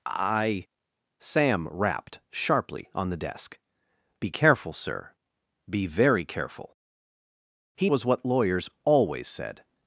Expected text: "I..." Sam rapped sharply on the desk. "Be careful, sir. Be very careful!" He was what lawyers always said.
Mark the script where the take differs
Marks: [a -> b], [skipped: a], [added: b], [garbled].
"I..." Sam rapped sharply on the desk. "Be careful, sir. Be very careful!" He was what lawyers always said.